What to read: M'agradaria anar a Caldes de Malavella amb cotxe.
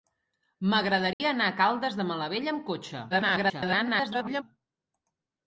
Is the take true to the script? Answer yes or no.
no